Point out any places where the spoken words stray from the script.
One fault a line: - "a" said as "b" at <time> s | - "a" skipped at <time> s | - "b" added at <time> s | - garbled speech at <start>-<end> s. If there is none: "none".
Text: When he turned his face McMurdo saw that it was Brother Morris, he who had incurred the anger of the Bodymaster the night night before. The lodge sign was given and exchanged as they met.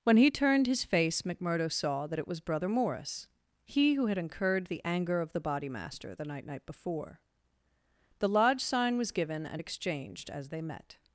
none